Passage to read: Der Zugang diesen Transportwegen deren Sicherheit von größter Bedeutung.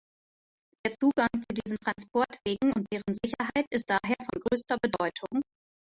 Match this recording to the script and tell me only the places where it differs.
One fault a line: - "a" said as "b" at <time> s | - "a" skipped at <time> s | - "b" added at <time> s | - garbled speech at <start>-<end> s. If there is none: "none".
- "zu" added at 1.3 s
- "und" added at 2.7 s
- "ist daher" added at 3.7 s